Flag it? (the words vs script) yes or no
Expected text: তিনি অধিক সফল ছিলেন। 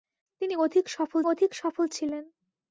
yes